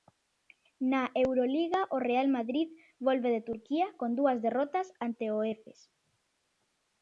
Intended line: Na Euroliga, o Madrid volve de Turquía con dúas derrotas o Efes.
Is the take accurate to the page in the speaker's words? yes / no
no